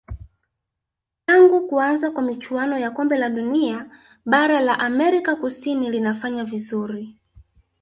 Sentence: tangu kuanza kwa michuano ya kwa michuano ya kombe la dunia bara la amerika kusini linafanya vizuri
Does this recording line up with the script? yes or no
no